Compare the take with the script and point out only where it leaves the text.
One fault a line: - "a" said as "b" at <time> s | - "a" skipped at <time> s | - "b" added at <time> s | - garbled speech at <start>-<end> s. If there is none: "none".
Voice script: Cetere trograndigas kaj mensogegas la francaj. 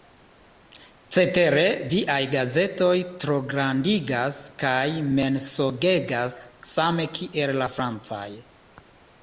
- "viaj gazetoj" added at 1.9 s
- "same kiel" added at 6.8 s